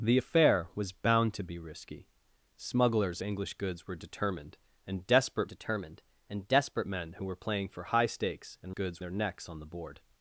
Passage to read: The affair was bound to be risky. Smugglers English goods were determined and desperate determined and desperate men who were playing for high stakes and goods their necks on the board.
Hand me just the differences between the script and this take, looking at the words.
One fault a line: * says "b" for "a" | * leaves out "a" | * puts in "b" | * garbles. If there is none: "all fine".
all fine